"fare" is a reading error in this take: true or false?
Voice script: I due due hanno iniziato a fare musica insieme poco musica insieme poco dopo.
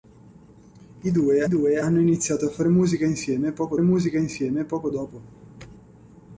false